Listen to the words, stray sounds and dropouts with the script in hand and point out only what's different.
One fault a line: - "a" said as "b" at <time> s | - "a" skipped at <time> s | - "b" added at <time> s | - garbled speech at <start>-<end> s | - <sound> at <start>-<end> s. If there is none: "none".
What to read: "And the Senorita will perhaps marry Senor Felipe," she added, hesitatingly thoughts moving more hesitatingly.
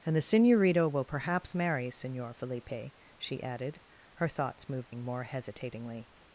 - "hesitatingly" said as "her" at 4.2 s
- dropout at 4.8-4.9 s